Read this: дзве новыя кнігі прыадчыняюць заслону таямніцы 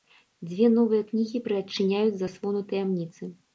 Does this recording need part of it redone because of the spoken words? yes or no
no